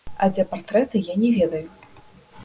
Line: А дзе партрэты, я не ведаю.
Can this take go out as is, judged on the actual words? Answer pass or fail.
pass